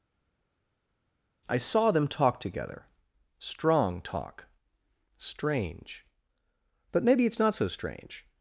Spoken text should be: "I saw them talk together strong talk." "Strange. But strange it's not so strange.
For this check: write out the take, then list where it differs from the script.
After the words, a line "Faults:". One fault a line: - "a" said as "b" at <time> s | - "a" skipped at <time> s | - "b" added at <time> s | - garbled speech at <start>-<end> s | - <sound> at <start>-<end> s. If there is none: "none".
"I saw them talk together strong talk." "Strange. But maybe it's not so strange.
Faults:
- "strange" said as "maybe" at 7.0 s